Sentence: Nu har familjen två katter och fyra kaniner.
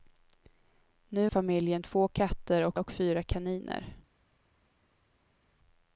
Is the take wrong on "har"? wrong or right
wrong